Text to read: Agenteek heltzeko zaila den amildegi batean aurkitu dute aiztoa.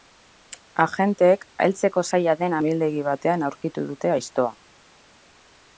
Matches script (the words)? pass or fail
pass